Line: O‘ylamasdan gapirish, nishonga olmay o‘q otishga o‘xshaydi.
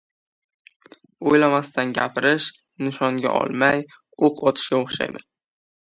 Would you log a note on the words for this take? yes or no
no